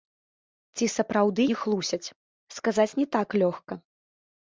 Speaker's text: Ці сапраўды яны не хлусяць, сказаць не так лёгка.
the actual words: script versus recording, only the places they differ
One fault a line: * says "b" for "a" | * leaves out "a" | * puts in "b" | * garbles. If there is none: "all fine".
* leaves out "яны"